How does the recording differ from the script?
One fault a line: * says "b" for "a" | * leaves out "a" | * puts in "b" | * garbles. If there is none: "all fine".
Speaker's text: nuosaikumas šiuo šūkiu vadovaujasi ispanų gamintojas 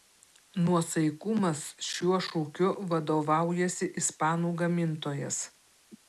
all fine